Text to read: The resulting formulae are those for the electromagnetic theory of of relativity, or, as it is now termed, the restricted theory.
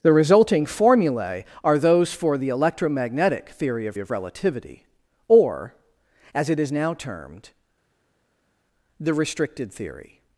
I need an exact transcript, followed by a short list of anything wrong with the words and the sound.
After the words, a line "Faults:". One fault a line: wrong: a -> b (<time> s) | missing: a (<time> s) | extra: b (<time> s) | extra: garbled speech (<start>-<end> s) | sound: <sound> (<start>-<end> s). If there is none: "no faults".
The resulting formulae are those for the electromagnetic theory of of relativity, or, as it is now termed, the restricted theory.
Faults:
no faults